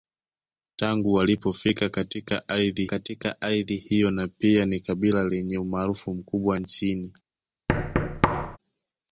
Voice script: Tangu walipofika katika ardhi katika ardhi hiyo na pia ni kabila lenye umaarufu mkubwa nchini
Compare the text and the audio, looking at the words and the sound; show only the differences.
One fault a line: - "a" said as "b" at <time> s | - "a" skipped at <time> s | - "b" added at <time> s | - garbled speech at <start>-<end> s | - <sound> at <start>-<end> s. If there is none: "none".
- thud at 7.7-8.6 s